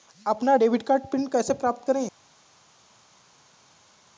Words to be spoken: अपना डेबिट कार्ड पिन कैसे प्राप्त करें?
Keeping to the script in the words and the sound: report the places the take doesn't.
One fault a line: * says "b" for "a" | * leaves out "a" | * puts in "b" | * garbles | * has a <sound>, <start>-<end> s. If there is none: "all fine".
all fine